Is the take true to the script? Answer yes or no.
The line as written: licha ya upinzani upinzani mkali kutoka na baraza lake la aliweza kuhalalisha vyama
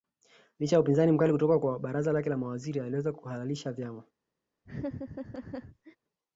no